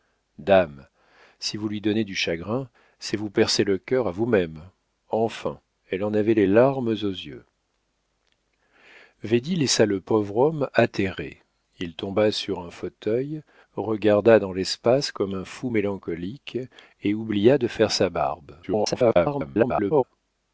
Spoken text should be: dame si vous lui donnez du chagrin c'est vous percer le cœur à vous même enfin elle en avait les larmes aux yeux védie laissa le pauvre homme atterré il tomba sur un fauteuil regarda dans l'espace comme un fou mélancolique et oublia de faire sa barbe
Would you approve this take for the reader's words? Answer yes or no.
no